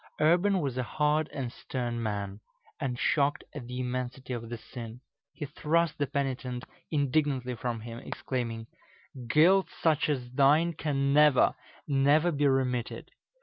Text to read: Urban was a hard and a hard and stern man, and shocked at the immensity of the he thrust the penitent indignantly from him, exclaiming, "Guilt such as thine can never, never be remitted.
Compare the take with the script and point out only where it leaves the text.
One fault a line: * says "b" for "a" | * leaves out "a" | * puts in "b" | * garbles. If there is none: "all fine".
* leaves out "a hard and"
* puts in "sin"